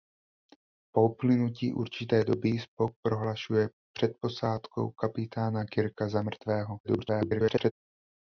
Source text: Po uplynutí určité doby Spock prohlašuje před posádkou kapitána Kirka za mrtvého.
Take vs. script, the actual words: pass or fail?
fail